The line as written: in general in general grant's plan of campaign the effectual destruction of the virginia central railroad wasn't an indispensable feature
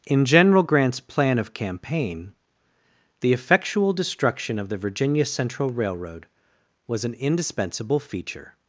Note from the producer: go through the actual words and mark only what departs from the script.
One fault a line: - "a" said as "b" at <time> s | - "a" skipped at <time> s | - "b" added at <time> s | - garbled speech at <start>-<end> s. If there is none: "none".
- "in general" skipped at 0.6 s
- "wasn't" said as "was" at 6.9 s